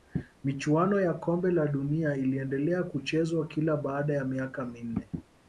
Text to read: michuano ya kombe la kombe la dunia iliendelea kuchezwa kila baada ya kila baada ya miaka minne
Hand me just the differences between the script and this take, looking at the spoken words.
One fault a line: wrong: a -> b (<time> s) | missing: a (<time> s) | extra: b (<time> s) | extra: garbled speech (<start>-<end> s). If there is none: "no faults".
missing: kombe la (1.7 s)
missing: kila baada ya (4.2 s)